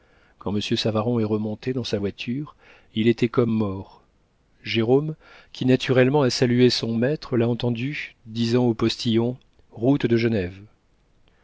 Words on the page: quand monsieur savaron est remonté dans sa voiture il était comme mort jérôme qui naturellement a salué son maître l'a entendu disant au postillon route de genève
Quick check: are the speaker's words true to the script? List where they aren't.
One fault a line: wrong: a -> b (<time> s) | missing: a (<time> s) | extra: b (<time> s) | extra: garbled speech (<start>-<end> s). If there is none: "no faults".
no faults